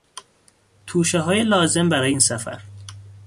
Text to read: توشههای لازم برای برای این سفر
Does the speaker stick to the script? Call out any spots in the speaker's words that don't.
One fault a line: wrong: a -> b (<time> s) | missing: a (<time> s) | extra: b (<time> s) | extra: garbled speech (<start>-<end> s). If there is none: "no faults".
missing: برای (2.1 s)